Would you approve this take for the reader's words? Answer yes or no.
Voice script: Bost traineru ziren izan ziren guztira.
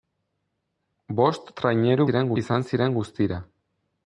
yes